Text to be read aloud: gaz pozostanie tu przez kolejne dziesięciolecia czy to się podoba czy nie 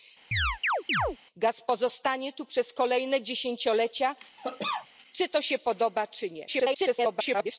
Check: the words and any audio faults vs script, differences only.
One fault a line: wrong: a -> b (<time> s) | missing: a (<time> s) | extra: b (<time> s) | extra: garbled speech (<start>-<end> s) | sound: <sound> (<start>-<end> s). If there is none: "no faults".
sound: chirp (0.3-1.2 s)
sound: cough (4.4-4.9 s)
extra: garbled speech (6.5-7.6 s)